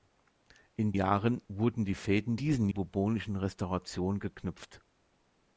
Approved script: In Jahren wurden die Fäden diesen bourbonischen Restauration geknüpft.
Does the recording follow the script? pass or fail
pass